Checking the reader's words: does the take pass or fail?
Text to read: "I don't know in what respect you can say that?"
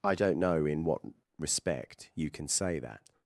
pass